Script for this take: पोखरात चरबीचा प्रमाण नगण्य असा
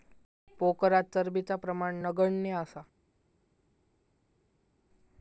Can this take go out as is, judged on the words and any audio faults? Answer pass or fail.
pass